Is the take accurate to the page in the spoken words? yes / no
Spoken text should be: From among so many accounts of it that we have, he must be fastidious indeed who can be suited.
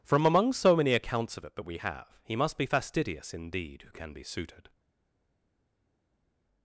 yes